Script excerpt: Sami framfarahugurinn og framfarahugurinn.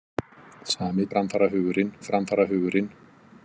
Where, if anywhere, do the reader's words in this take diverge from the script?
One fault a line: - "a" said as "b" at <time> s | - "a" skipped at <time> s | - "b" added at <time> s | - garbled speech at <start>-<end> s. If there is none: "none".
none